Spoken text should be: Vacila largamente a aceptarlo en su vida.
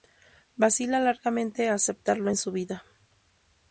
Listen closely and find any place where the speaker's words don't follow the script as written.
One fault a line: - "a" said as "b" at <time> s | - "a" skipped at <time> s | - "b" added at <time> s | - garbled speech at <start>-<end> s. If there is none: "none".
none